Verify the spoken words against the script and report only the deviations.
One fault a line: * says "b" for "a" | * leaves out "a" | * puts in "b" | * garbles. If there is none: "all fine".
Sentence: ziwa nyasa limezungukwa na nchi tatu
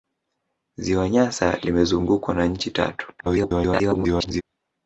* garbles